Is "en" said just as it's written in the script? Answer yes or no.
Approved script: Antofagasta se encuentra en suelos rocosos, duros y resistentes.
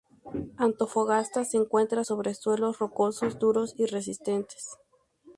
no